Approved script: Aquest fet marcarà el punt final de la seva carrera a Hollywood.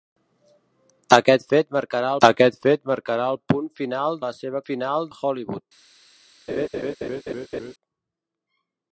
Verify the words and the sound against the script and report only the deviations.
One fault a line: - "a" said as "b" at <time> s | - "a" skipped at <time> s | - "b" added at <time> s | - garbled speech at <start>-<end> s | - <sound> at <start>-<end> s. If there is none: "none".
- "aquest fet marcarà" added at 2.3 s
- "de" skipped at 4.2 s
- "carrera" said as "final" at 4.7 s
- laugh at 6.5-7.7 s